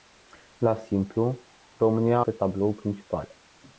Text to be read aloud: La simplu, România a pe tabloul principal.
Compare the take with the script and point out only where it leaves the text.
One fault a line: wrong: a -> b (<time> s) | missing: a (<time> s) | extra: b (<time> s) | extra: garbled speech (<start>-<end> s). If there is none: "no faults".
no faults